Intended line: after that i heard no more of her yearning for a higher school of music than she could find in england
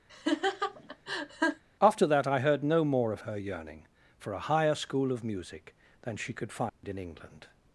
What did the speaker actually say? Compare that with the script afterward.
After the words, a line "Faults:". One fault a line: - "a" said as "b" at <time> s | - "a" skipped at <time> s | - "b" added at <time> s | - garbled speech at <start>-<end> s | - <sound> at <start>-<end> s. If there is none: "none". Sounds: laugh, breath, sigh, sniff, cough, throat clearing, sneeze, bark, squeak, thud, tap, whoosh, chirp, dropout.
after that i heard no more of her yearning for a higher school of music than she could find in england
Faults:
- laugh at 0.1-1.6 s
- dropout at 6.7-6.8 s